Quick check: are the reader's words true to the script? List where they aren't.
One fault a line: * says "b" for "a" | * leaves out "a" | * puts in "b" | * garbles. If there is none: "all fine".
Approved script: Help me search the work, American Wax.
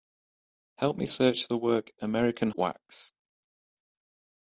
all fine